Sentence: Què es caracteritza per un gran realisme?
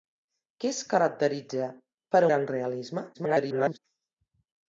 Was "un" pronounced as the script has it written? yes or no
no